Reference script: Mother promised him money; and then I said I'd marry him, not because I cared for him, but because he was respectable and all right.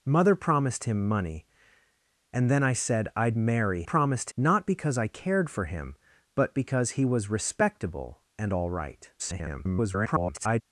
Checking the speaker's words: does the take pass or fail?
fail